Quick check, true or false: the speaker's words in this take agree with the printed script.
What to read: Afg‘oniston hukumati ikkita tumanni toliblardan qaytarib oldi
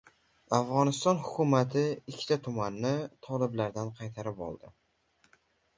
true